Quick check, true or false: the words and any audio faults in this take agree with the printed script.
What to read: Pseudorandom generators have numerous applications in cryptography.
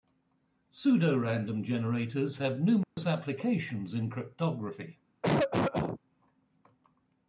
false